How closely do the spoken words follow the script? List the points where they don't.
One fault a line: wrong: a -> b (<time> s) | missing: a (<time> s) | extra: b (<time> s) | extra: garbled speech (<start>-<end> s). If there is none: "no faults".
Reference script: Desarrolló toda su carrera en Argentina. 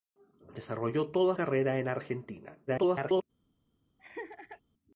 missing: su (1.4 s)
extra: garbled speech (2.7-3.2 s)